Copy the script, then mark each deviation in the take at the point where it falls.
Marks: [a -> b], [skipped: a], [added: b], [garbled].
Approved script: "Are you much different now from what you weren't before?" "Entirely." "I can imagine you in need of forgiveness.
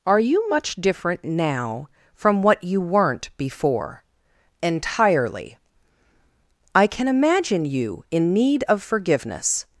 "Are you much different now from what you weren't before?" "Entirely." "I can imagine you in need of forgiveness.